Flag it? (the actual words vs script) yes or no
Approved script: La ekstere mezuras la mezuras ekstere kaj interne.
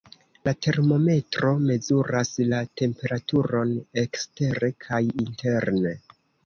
yes